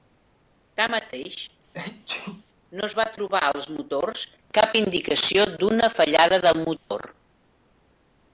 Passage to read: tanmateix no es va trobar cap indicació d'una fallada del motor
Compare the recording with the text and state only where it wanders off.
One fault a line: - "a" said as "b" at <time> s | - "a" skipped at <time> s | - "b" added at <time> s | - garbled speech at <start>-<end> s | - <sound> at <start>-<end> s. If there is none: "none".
- sneeze at 1.7-2.4 s
- "als motors" added at 3.5 s
- dropout at 6.8-6.9 s